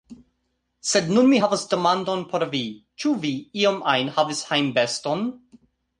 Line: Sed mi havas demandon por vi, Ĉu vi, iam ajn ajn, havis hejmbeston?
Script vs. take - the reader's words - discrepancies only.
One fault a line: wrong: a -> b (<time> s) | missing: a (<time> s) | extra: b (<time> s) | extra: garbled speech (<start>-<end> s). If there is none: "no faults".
extra: nun (1.2 s)
missing: ajn (4.1 s)